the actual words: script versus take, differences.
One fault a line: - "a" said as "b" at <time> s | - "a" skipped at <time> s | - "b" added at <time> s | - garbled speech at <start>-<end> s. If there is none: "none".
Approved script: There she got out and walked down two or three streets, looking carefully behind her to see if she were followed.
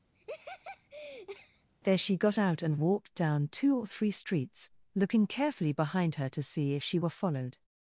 none